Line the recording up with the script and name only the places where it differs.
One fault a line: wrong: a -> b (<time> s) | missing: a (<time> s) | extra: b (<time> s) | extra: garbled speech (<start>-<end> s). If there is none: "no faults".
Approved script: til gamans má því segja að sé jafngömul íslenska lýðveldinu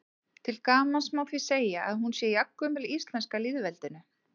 extra: hún (2.1 s)